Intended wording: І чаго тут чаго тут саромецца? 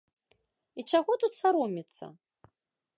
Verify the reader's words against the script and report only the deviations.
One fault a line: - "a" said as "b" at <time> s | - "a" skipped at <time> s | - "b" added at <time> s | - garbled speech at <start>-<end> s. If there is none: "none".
- "чаго тут" skipped at 1.4 s